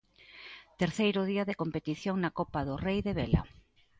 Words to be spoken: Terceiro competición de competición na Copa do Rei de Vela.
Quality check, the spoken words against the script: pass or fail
fail